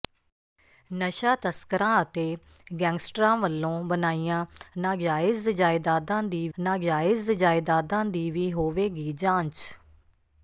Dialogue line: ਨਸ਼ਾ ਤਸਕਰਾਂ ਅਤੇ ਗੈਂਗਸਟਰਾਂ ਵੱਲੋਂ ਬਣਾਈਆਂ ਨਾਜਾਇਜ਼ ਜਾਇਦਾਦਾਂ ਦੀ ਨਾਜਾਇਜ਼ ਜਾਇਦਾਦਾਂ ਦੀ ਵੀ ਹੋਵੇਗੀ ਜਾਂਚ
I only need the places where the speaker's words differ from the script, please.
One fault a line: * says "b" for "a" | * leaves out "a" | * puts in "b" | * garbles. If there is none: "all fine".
all fine